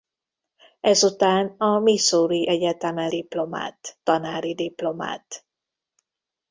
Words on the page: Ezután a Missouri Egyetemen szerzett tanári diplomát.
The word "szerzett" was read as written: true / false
false